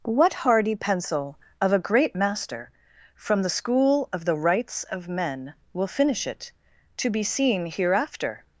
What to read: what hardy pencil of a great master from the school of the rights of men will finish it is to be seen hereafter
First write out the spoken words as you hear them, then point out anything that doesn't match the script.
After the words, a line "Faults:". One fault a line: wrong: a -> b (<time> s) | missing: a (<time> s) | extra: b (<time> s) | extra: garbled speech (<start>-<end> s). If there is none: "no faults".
what hardy pencil of a great master from the school of the rights of men will finish it to be seen hereafter
Faults:
missing: is (6.5 s)